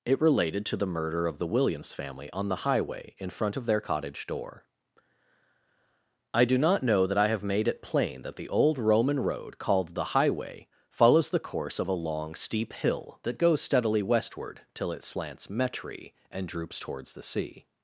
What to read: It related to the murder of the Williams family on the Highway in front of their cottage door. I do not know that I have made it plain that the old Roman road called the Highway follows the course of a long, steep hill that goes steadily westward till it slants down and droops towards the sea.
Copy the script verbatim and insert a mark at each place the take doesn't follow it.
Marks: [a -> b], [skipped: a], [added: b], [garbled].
It related to the murder of the Williams family on the Highway in front of their cottage door. I do not know that I have made it plain that the old Roman road called the Highway follows the course of a long, steep hill that goes steadily westward till it slants [down -> metry] and droops towards the sea.